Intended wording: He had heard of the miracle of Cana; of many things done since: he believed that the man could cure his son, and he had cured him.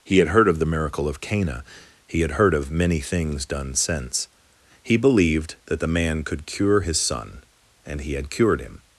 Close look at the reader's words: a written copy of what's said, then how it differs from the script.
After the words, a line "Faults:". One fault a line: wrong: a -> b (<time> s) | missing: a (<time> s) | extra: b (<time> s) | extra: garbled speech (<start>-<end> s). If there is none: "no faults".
He had heard of the miracle of Cana; he had heard of many things done since: he believed that the man could cure his son, and he had cured him.
Faults:
extra: he had heard (2.1 s)